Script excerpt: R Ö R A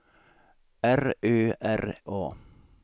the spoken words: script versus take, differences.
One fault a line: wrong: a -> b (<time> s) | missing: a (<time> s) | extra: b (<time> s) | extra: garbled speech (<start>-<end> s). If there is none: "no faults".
no faults